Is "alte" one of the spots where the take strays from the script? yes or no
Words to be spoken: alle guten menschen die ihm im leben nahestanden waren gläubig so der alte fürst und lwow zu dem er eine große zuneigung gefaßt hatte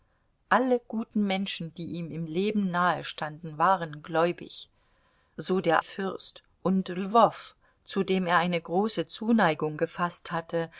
yes